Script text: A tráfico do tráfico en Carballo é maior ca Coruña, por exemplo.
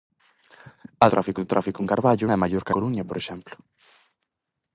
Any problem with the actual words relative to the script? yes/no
no